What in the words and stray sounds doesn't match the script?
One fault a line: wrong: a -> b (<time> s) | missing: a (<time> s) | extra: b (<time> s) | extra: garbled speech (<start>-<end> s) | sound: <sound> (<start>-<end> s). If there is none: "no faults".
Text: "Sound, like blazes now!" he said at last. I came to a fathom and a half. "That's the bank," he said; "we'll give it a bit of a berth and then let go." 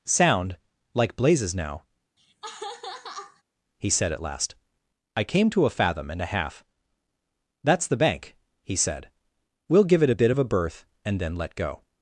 sound: laugh (2.2-3.4 s)